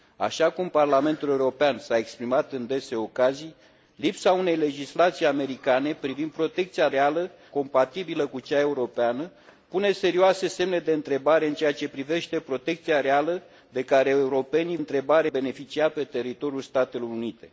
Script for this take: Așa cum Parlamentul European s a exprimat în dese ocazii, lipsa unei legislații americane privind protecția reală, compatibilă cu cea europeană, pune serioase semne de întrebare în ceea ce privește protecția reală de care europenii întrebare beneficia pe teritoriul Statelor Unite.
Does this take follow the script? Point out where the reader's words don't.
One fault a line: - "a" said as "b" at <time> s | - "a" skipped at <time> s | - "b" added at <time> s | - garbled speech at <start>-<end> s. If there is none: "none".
none